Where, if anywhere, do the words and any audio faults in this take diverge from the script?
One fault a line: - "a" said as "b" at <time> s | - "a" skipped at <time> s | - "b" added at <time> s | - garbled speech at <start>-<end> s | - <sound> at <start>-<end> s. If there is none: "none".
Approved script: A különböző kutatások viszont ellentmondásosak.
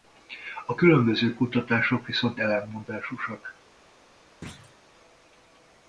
- thud at 4.4-4.8 s